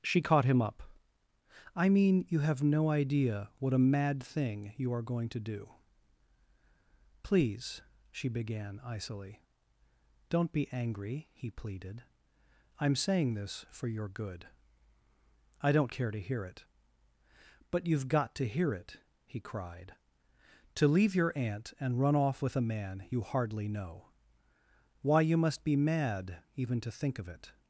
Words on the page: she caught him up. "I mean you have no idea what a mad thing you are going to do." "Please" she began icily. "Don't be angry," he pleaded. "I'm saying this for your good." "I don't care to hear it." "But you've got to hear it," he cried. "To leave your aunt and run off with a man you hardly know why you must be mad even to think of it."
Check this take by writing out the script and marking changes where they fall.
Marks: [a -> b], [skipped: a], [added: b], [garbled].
she caught him up. "I mean you have no idea what a mad thing you are going to do." "Please" she began icily. "Don't be angry," he pleaded. "I'm saying this for your good." "I don't care to hear it." "But you've got to hear it," he cried. "To leave your aunt and run off with a man you hardly know why you must be mad even to think of it."